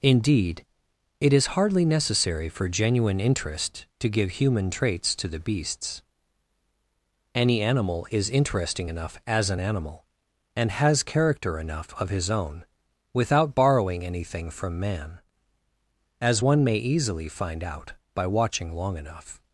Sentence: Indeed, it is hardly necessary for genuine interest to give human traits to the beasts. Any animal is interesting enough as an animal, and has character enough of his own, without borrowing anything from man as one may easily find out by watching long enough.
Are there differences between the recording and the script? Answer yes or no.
no